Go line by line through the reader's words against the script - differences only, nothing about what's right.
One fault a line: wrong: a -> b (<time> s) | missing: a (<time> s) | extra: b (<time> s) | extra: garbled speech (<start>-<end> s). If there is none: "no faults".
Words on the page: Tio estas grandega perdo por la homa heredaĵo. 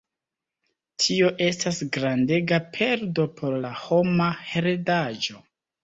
no faults